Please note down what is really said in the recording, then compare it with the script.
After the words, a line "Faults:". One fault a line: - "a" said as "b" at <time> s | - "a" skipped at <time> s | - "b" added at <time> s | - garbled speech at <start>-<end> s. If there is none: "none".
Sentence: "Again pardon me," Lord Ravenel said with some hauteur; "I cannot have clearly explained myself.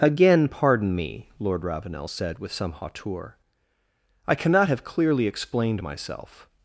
"Again pardon me," Lord Ravenel said with some hauteur; "I cannot have clearly explained myself.
Faults:
none